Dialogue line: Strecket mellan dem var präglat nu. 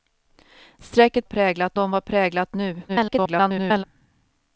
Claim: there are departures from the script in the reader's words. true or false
true